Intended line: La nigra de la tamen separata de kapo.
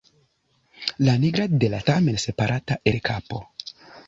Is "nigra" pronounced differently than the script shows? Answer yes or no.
no